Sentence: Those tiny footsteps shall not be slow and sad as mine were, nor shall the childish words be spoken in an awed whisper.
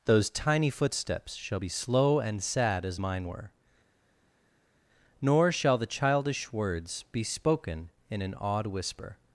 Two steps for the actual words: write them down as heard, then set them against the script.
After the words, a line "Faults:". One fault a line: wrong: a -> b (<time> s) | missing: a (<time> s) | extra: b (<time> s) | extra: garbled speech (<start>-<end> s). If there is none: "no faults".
Those tiny footsteps shall be slow and sad as mine were, nor shall the childish words be spoken in an awed whisper.
Faults:
missing: not (1.6 s)